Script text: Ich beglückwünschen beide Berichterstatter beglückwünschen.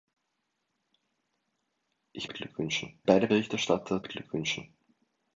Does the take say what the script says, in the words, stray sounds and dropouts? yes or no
yes